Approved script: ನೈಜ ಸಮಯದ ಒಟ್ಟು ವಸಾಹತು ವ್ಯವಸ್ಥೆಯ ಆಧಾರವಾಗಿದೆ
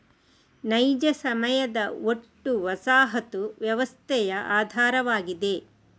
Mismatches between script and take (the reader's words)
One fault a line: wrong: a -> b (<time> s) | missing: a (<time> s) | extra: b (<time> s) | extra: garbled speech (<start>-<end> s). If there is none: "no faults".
no faults